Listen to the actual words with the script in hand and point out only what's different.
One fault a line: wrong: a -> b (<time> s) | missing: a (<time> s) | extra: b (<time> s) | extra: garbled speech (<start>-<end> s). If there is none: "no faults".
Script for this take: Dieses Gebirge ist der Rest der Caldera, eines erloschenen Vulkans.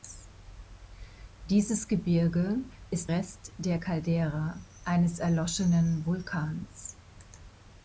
missing: der (3.1 s)